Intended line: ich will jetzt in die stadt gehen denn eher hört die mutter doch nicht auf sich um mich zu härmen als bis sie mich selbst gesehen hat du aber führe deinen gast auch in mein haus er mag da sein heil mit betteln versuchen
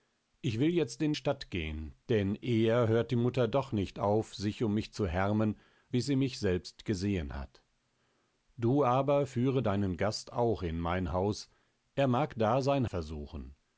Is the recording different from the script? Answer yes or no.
yes